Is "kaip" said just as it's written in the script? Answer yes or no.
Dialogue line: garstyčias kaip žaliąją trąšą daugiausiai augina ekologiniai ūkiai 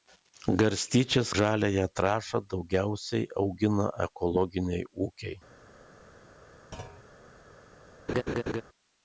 no